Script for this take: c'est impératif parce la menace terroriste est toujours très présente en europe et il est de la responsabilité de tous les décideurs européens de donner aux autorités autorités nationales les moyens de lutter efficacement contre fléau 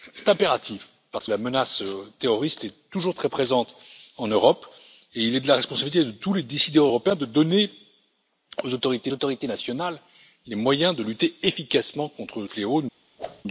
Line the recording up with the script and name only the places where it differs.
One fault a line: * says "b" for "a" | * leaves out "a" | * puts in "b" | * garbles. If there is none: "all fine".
all fine